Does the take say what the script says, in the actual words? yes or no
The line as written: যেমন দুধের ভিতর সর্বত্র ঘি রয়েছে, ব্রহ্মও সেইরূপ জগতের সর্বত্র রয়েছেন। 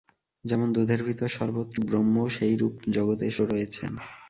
no